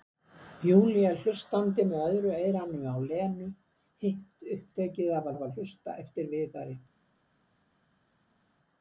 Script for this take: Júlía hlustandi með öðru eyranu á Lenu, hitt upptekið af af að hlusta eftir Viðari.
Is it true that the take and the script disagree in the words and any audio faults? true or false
false